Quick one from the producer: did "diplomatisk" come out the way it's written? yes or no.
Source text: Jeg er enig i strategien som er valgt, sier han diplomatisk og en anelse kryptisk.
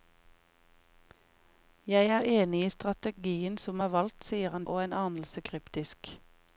no